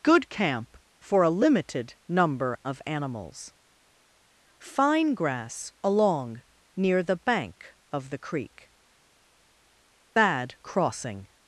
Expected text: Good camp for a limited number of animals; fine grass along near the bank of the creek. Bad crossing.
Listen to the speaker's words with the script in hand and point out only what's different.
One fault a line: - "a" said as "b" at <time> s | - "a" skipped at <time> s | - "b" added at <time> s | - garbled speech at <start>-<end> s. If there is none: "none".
none